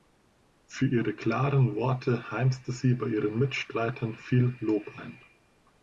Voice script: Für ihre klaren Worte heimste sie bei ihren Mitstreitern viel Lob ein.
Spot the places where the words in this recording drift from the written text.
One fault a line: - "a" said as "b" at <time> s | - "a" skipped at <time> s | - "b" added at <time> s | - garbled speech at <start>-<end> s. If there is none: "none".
none